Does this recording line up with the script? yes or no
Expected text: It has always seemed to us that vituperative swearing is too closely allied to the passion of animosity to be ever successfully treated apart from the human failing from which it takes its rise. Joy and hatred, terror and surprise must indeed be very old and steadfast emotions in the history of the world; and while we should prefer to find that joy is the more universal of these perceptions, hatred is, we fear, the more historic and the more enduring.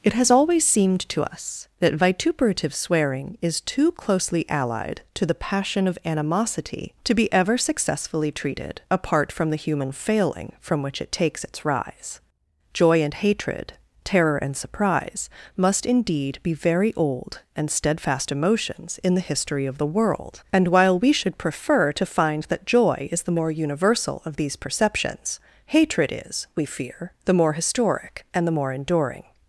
yes